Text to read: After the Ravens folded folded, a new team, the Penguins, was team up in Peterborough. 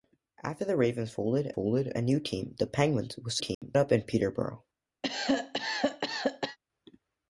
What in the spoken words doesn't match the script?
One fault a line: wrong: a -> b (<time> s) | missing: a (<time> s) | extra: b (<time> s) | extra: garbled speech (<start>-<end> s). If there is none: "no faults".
no faults